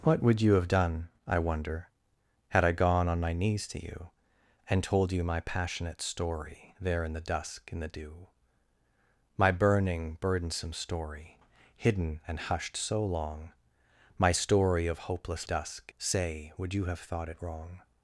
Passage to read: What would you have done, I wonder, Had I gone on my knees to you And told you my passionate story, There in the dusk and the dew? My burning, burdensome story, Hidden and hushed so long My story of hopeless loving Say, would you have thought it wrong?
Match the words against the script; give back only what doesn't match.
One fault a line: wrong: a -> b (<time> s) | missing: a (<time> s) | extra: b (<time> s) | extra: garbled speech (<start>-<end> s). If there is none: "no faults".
wrong: loving -> dusk (15.4 s)